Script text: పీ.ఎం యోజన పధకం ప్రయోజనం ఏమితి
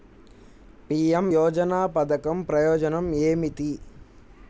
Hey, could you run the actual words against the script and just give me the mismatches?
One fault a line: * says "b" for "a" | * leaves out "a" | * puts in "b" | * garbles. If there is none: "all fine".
all fine